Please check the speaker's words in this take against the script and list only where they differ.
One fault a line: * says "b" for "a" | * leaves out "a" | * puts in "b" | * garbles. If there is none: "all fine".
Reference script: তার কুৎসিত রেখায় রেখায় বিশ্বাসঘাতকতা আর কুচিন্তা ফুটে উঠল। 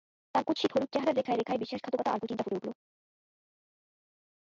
* puts in "হলুদ চেহারার"